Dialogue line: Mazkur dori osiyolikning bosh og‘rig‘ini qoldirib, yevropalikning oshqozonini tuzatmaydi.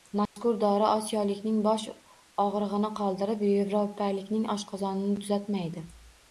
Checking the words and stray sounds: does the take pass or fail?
fail